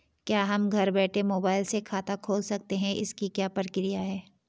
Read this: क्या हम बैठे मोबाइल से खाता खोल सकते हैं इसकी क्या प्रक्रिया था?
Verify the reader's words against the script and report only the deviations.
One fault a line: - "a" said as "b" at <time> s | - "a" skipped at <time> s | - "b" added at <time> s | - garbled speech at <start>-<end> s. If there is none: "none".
- "घर" added at 0.7 s
- "था" said as "है" at 4.0 s